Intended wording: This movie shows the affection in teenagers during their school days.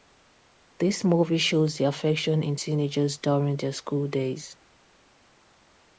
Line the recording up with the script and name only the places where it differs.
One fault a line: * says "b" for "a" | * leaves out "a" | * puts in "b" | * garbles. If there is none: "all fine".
all fine